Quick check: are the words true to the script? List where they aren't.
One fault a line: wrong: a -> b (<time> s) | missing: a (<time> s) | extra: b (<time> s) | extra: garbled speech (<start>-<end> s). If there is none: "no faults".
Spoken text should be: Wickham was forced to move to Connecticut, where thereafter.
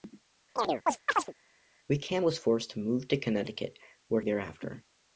no faults